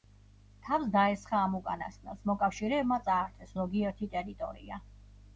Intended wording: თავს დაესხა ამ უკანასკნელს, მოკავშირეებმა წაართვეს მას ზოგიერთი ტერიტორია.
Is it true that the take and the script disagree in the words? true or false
true